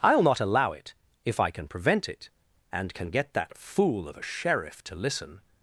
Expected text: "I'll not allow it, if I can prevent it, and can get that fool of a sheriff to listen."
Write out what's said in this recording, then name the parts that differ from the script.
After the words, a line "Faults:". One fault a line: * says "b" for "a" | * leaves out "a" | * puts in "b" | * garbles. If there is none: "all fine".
"I'll not allow it, if I can prevent it, and can get that fool of a sheriff to listen."
Faults:
all fine